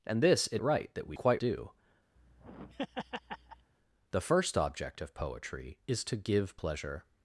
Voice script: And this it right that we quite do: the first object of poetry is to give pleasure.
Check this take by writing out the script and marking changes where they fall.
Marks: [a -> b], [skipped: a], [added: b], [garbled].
And this it right that we quite do: the first object of poetry is to give pleasure.